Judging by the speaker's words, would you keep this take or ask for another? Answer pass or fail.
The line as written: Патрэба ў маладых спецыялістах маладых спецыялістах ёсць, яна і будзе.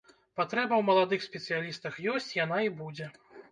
fail